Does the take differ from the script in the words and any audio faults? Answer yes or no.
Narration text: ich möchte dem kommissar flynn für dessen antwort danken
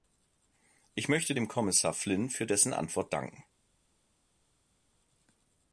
no